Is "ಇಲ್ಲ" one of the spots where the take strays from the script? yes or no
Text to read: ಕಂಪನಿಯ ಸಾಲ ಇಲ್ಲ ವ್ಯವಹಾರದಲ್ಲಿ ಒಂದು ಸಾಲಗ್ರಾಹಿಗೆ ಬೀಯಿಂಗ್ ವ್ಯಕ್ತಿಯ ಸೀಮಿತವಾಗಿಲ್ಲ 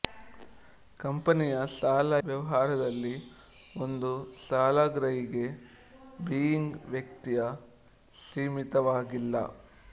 yes